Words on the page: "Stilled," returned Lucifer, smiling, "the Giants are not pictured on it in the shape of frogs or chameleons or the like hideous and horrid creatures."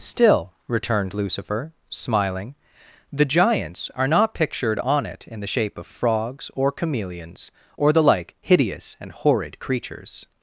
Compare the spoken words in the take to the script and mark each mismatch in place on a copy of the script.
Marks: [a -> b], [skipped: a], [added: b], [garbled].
["Stilled," -> Still] returned Lucifer, smiling, "the Giants are not pictured on it in the shape of frogs or chameleons or the like hideous and horrid creatures."